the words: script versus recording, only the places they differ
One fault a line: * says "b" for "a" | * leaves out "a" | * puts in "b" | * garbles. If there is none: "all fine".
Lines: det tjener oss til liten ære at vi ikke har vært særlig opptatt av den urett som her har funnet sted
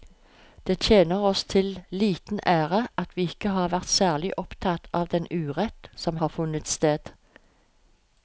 * leaves out "her"